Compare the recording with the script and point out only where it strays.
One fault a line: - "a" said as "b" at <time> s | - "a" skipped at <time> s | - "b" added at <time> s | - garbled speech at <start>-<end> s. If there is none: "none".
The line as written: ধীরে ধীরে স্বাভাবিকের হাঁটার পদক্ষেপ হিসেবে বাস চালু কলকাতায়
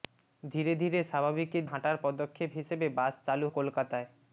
none